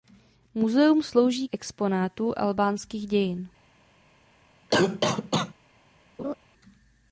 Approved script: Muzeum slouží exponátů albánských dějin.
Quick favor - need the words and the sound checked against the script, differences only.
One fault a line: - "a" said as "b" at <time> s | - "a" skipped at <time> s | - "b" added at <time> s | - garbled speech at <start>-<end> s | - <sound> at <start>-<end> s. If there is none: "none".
- cough at 4.7-5.5 s
- laugh at 6.2-6.3 s